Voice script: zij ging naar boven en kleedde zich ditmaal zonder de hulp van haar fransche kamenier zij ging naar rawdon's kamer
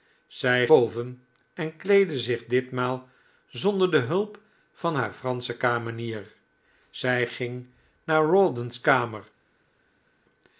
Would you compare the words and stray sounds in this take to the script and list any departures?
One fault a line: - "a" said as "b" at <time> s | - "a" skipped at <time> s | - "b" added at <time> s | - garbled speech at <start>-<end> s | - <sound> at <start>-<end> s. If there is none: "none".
- "ging naar" skipped at 0.7 s